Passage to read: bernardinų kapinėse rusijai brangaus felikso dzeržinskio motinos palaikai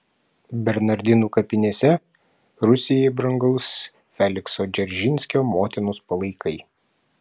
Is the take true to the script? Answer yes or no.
yes